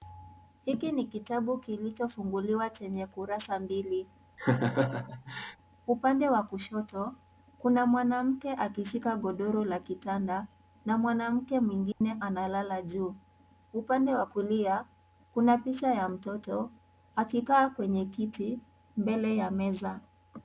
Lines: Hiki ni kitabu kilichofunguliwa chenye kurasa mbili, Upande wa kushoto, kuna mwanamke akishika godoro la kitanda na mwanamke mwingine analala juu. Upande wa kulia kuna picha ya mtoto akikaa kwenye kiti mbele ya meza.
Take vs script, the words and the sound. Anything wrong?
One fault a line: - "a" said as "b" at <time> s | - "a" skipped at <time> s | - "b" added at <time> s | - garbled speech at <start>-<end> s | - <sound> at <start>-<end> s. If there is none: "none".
- laugh at 4.4-5.6 s
- dropout at 11.9-12.0 s